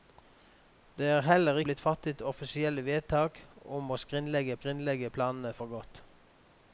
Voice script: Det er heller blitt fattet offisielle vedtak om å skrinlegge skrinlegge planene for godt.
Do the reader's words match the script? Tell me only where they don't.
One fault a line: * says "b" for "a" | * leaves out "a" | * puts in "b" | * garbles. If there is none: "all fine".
all fine